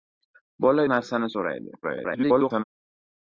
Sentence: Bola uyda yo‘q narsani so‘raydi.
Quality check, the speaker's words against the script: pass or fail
fail